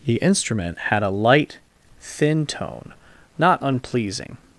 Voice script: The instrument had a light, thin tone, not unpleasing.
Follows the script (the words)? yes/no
yes